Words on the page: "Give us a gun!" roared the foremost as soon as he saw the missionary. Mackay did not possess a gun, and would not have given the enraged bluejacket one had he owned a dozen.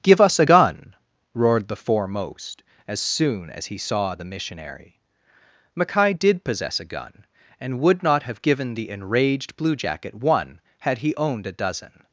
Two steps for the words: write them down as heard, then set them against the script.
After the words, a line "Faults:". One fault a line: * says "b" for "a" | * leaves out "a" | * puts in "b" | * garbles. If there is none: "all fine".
"Give us a gun!" roared the foremost as soon as he saw the missionary. Mackay did possess a gun, and would not have given the enraged bluejacket one had he owned a dozen.
Faults:
* leaves out "not"